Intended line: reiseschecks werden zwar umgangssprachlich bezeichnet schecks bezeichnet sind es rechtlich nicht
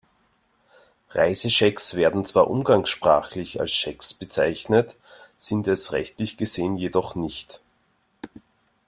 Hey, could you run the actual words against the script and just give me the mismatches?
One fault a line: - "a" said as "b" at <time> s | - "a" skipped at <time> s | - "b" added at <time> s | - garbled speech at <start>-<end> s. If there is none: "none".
- "bezeichnet" said as "als" at 3.6 s
- "gesehen jedoch" added at 6.4 s